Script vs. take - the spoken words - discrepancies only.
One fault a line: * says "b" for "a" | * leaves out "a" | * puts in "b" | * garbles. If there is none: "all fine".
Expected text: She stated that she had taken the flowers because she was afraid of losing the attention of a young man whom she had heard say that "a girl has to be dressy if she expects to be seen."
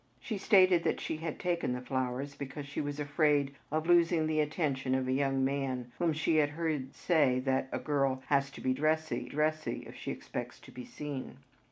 * puts in "dressy"